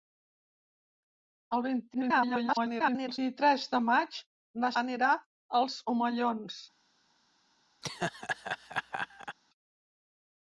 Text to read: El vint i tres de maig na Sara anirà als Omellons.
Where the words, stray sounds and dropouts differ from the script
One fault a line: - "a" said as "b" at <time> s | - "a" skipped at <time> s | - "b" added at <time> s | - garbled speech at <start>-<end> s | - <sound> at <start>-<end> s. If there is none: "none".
- garbled speech at 1.9-3.2 s
- "Sara" skipped at 4.7 s
- laugh at 7.8-9.4 s